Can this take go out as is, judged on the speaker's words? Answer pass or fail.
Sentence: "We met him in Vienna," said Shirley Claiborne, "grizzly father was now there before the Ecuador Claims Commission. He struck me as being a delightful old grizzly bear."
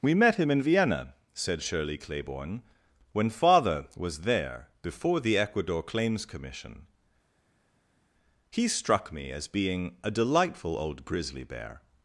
fail